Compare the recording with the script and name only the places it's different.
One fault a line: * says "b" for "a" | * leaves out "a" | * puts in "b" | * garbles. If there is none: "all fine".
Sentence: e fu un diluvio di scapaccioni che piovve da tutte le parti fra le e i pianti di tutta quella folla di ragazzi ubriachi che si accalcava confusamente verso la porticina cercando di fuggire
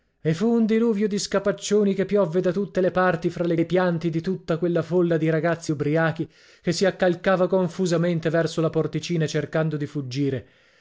all fine